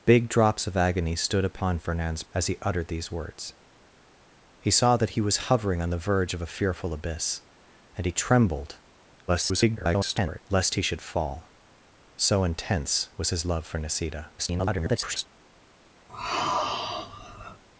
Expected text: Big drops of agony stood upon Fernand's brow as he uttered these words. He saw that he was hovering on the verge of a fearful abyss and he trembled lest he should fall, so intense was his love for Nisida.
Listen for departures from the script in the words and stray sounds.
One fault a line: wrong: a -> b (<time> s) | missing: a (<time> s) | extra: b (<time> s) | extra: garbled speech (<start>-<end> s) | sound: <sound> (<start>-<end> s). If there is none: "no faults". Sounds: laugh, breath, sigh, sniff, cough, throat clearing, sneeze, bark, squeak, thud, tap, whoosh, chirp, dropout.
missing: brow (2.2 s)
extra: garbled speech (9.3-10.4 s)
extra: garbled speech (14.4-15.3 s)
sound: sigh (16.1-17.6 s)